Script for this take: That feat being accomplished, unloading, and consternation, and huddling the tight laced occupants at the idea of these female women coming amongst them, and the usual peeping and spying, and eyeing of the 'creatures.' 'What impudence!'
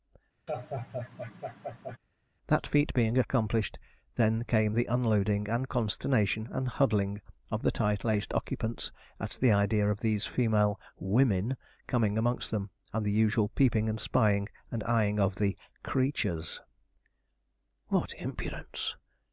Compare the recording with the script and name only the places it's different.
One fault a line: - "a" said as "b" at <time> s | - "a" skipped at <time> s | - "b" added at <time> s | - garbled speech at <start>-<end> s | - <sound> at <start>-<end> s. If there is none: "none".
- laugh at 0.5-2.0 s
- "then came the" added at 4.2 s
- "of" added at 7.5 s